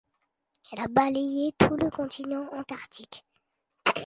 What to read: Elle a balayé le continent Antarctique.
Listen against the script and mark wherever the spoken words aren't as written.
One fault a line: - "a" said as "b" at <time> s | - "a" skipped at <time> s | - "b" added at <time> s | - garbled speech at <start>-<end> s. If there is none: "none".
- "tout" added at 1.6 s